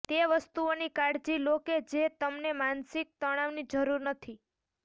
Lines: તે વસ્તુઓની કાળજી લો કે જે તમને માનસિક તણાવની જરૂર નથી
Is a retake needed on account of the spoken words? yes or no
no